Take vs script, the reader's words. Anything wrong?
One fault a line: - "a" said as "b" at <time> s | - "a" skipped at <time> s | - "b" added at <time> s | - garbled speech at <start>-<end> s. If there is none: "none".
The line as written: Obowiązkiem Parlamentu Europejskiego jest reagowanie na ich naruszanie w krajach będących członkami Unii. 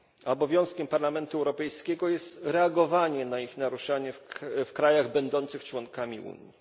none